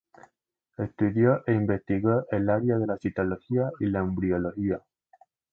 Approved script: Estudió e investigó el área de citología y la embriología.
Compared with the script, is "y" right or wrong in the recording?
right